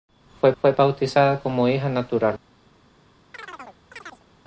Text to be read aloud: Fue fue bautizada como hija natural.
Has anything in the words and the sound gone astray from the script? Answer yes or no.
yes